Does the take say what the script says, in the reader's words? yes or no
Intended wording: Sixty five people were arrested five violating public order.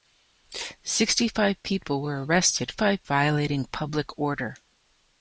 yes